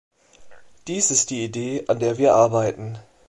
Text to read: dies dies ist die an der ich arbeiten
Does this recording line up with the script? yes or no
no